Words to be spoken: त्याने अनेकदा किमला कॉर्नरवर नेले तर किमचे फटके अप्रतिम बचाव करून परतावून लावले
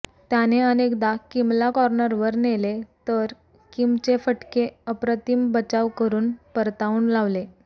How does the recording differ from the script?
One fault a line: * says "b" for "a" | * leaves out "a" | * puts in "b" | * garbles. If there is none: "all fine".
all fine